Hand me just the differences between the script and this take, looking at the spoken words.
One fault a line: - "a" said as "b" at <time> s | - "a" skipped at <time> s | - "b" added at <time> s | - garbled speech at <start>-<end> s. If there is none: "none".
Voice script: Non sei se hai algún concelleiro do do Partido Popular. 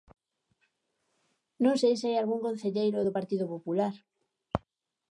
- "do" skipped at 3.2 s